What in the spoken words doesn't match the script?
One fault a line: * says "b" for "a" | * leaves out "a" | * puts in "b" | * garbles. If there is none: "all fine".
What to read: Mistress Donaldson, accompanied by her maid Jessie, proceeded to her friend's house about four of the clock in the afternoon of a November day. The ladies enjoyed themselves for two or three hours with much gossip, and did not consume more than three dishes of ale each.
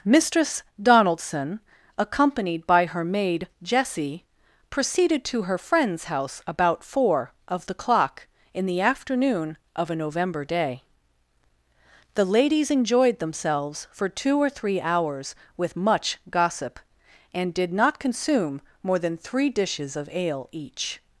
all fine